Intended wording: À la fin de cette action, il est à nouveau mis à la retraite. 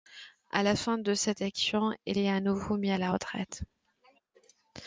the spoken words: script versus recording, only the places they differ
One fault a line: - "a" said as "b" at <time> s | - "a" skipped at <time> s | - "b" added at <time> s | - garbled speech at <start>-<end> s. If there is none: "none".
none